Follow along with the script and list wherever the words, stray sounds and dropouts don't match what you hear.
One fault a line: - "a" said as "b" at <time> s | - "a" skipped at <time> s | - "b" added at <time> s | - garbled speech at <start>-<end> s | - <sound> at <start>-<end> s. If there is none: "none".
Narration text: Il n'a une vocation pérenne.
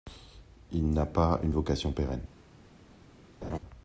- "pas" added at 1.1 s
- laugh at 3.4-3.6 s